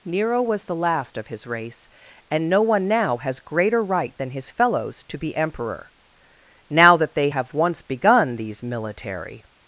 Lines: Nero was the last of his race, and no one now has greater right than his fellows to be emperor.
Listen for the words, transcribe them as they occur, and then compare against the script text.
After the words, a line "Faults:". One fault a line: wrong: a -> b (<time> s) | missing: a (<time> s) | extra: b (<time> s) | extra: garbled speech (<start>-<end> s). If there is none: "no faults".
Nero was the last of his race, and no one now has greater right than his fellows to be emperor. Now that they have once begun these military
Faults:
extra: Now that they have once begun these military (6.7 s)